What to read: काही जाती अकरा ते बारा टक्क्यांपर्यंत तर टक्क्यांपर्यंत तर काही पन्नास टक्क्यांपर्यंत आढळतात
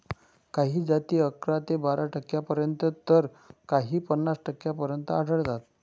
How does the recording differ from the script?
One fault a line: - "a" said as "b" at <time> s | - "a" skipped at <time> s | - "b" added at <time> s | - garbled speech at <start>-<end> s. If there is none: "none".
- "टक्क्यांपर्यंत तर" skipped at 3.3 s